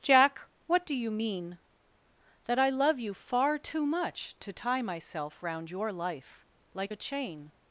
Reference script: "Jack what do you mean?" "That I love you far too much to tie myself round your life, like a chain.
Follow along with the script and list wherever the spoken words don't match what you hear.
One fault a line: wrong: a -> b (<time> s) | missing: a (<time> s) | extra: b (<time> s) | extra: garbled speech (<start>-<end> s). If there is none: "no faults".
no faults